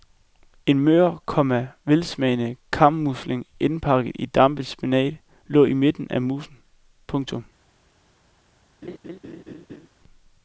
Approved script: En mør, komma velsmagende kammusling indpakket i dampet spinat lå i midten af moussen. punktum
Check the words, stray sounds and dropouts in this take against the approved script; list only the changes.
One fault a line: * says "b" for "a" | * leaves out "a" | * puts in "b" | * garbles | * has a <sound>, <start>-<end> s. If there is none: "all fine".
* has a laugh, 8.8-9.9 s